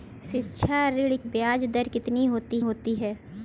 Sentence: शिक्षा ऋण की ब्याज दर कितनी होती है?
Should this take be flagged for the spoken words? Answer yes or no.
yes